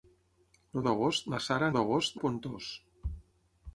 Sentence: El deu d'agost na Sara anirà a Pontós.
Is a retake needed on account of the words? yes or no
yes